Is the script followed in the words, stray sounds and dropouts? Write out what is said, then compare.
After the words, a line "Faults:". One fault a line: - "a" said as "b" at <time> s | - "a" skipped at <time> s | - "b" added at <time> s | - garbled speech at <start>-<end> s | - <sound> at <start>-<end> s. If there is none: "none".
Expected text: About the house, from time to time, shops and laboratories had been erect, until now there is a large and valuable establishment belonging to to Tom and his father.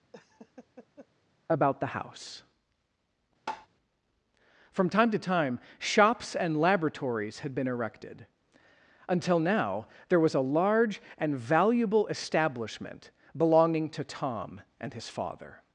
About the house, from time to time, shops and laboratories had been erected, until now there was a large and valuable establishment belonging to Tom and his father.
Faults:
- laugh at 0.1-1.1 s
- tap at 3.5-3.7 s
- "erect" said as "erected" at 7.7 s
- "is" said as "was" at 10.2 s
- "to" skipped at 14.0 s